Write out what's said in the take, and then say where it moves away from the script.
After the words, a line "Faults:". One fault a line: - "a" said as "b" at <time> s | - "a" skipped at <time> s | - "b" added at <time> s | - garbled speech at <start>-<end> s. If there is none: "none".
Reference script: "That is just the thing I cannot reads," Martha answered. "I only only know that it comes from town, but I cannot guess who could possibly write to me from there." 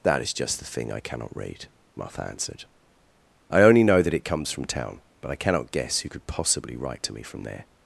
"That is just the thing I cannot read," Martha answered. "I only know that it comes from town, but I cannot guess who could possibly write to me from there."
Faults:
- "reads" said as "read" at 1.4 s
- "only" skipped at 3.8 s